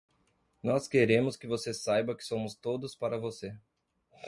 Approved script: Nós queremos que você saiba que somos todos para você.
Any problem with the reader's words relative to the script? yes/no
no